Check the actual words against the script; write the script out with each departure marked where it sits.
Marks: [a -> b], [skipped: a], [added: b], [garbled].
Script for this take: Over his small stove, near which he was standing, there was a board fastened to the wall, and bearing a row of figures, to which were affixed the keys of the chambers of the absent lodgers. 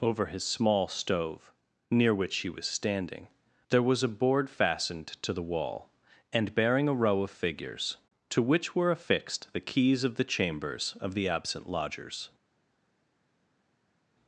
Over his small stove, near which he was standing, there was a board fastened to the wall, and bearing a row of figures, to which were affixed the keys of the chambers of the absent lodgers.